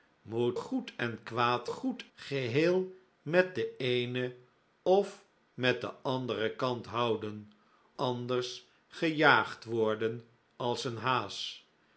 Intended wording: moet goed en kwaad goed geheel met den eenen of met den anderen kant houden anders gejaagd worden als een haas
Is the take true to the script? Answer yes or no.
yes